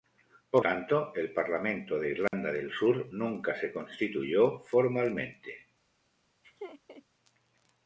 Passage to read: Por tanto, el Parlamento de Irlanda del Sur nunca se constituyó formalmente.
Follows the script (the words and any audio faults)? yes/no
no